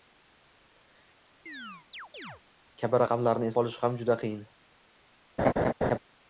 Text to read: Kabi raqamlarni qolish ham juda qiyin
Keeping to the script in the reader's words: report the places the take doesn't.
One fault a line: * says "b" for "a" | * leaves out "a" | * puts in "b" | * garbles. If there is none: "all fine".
all fine